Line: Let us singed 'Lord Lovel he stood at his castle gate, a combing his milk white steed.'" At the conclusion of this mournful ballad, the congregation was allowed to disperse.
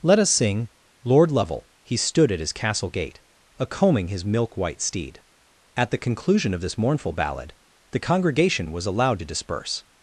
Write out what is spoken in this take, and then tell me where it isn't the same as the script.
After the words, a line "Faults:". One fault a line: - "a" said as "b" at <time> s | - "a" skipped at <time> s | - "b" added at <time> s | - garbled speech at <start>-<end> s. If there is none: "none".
Let us sing 'Lord Lovel he stood at his castle gate, a combing his milk white steed.'" At the conclusion of this mournful ballad, the congregation was allowed to disperse.
Faults:
- "singed" said as "sing" at 0.3 s